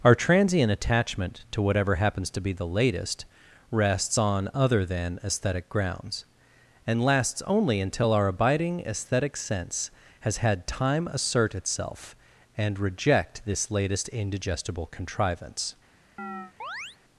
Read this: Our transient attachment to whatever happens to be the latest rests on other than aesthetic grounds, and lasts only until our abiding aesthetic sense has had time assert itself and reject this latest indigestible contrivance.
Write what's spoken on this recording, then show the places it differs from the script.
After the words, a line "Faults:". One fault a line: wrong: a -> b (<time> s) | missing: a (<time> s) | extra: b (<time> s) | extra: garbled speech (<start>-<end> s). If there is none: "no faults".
Our transient attachment to whatever happens to be the latest rests on other than aesthetic grounds, and lasts only until our abiding aesthetic sense has had time assert itself and reject this latest indigestible contrivance.
Faults:
no faults